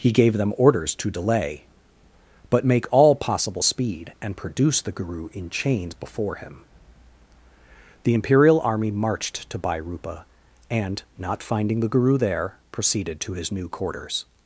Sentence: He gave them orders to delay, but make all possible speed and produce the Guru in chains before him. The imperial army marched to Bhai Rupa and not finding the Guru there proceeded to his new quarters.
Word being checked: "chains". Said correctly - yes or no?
yes